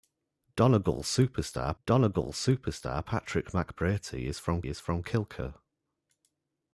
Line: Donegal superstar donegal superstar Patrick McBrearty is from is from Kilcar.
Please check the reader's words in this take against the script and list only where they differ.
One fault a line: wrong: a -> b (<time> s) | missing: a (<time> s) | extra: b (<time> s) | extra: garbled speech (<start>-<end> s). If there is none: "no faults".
no faults